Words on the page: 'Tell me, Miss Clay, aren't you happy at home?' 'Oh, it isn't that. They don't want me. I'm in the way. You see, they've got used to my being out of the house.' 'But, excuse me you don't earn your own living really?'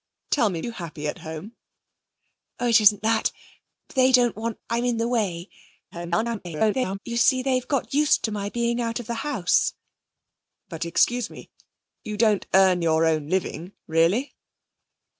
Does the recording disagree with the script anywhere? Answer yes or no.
yes